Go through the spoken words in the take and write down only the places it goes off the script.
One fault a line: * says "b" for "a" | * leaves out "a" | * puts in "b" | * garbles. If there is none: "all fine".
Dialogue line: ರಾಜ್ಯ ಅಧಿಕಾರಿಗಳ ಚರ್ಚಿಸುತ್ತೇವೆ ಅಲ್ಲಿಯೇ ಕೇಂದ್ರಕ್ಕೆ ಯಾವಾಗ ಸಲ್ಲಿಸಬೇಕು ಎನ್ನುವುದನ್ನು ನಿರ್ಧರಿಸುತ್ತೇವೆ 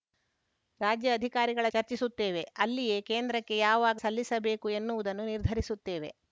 all fine